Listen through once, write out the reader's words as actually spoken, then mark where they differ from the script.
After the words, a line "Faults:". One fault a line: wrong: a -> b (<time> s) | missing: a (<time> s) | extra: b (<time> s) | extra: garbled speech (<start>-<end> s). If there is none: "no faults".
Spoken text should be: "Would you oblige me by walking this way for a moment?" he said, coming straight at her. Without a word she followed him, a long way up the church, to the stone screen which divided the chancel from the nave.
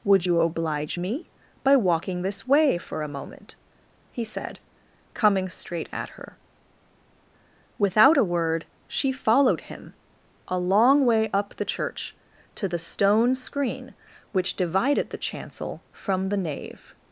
"Would you oblige me by walking this way for a moment?" he said, coming straight at her. Without a word she followed him, a long way up the church, to the stone screen which divided the chancel from the nave.
Faults:
no faults